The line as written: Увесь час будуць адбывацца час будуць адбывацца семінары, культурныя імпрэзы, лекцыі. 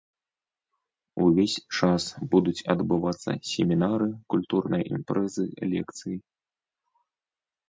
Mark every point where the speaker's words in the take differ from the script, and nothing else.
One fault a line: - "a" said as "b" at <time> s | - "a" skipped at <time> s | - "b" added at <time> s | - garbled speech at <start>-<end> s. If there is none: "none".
- "час будуць адбывацца" skipped at 3.3 s